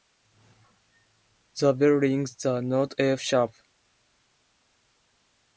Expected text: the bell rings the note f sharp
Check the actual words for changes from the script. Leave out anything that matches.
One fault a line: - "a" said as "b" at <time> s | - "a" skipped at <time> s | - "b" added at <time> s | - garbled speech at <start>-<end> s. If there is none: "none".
none